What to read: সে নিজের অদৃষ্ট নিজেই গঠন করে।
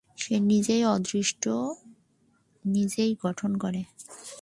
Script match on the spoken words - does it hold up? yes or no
yes